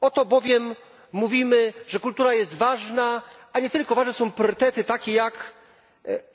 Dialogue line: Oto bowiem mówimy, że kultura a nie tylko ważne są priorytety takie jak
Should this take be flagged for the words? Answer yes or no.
yes